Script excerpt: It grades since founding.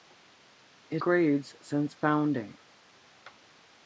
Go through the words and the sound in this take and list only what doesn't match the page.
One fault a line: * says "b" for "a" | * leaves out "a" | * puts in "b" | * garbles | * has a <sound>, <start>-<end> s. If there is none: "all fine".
all fine